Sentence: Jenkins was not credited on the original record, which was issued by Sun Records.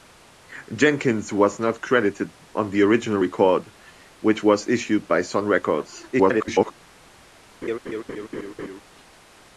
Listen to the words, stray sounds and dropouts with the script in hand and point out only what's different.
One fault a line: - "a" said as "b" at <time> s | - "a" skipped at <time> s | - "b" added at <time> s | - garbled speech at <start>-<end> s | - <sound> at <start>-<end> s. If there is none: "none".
- garbled speech at 6.1-6.7 s
- laugh at 7.6-8.8 s